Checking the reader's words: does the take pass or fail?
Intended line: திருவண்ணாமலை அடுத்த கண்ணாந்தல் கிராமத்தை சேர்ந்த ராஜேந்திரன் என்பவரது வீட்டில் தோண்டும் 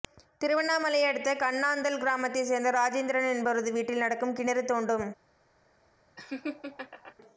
fail